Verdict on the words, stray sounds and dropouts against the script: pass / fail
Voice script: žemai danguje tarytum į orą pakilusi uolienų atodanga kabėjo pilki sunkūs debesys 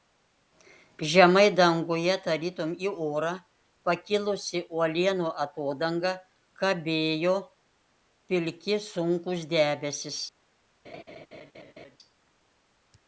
fail